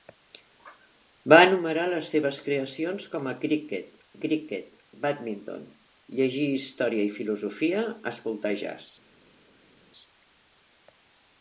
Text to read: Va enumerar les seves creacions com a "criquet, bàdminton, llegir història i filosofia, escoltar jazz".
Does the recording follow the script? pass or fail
fail